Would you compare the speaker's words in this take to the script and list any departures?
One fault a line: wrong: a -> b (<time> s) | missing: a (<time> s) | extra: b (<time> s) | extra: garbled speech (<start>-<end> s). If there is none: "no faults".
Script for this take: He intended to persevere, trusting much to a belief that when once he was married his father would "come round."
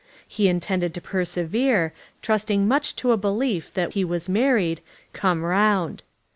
missing: when once (3.9 s)
missing: his father would (4.8 s)